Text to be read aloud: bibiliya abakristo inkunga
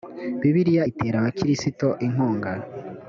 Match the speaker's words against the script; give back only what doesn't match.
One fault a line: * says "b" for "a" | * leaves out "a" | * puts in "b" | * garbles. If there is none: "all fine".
* puts in "itera"